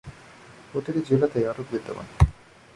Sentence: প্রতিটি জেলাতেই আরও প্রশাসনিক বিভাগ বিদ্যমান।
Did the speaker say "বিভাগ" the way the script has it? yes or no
no